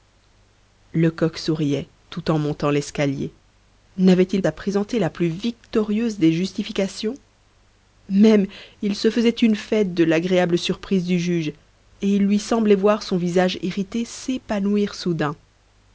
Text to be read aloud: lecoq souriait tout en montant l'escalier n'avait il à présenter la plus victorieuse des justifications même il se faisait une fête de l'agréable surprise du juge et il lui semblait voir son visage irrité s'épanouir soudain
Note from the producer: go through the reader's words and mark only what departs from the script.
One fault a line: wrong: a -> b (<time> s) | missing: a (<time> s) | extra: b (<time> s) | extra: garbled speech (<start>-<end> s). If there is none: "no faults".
no faults